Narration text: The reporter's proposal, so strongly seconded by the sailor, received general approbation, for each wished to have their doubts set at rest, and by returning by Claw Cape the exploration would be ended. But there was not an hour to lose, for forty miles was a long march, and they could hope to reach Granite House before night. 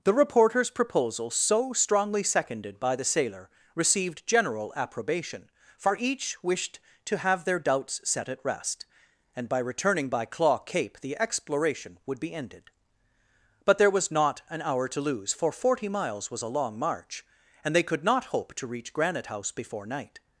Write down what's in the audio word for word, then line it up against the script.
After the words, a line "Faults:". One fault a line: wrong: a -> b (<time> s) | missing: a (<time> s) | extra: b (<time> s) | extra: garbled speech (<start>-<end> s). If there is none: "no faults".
The reporter's proposal, so strongly seconded by the sailor, received general approbation, for each wished to have their doubts set at rest, and by returning by Claw Cape the exploration would be ended. But there was not an hour to lose, for forty miles was a long march, and they could not hope to reach Granite House before night.
Faults:
extra: not (18.0 s)